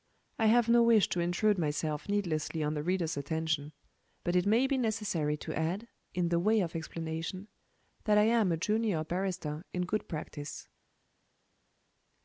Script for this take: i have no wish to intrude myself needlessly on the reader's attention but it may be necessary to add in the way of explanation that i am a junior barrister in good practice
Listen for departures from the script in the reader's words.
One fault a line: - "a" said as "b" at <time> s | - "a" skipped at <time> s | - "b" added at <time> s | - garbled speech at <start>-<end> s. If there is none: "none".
none